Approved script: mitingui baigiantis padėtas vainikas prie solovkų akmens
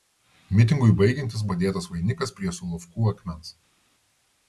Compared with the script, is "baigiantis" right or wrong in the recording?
right